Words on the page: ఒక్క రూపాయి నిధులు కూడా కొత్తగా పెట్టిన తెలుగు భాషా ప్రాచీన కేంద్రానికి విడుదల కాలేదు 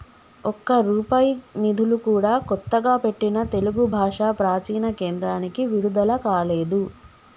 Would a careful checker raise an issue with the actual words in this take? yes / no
no